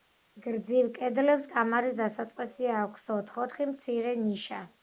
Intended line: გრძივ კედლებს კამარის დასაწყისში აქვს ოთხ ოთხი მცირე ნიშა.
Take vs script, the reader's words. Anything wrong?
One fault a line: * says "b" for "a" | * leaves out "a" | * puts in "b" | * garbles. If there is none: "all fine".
all fine